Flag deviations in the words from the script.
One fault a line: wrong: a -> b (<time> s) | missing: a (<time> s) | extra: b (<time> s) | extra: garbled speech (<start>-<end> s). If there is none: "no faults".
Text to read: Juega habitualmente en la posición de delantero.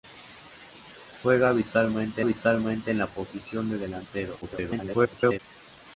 extra: habitualmente (2.2 s)
extra: garbled speech (4.4-5.4 s)